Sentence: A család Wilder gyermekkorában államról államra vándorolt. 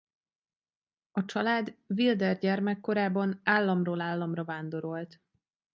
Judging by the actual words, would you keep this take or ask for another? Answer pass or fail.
pass